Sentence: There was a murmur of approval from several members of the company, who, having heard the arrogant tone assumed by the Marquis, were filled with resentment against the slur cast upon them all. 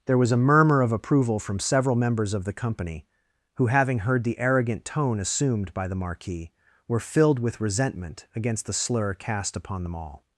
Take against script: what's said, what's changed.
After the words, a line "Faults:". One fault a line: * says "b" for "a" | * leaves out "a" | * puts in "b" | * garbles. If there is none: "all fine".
There was a murmur of approval from several members of the company, who, having heard the arrogant tone assumed by the Marquis, were filled with resentment against the slur cast upon them all.
Faults:
all fine